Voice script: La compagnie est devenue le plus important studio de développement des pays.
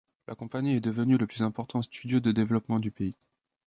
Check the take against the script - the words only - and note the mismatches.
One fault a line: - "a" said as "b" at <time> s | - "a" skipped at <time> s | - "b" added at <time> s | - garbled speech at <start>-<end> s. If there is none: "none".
- "des" said as "du" at 2.8 s